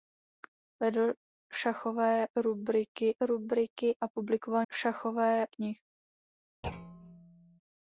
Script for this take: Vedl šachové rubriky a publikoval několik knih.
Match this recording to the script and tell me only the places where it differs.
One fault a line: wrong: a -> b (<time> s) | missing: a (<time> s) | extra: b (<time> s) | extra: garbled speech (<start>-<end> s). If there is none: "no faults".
extra: rubriky (3.2 s)
wrong: několik -> šachové (4.7 s)